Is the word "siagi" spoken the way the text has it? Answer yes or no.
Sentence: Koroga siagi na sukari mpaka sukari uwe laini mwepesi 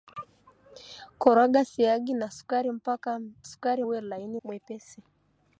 yes